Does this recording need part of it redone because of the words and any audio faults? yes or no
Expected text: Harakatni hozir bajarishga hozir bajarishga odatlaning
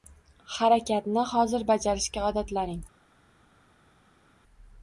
yes